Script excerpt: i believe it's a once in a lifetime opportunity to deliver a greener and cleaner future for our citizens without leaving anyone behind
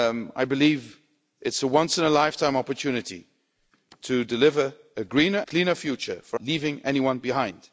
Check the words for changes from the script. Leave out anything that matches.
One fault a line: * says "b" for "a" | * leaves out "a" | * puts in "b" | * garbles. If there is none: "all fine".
* leaves out "and"
* leaves out "our citizens without"